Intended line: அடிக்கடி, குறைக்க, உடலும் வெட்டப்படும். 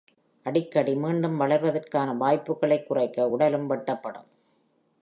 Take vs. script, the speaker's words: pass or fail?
fail